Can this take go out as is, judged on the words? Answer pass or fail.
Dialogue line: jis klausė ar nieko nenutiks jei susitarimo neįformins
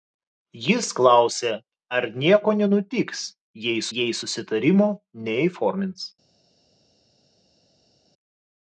fail